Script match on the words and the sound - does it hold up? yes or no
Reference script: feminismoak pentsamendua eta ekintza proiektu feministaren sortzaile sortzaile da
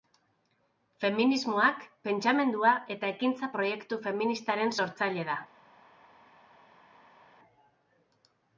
no